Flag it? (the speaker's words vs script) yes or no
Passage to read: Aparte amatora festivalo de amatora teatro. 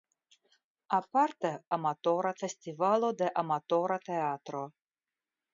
no